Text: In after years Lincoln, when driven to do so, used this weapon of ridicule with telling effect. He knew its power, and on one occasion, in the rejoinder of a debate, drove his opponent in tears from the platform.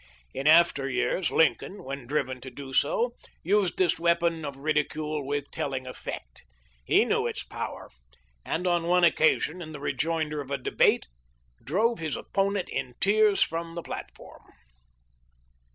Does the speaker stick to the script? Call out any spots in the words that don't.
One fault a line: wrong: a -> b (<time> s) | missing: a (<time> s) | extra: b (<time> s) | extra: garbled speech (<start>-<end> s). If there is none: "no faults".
no faults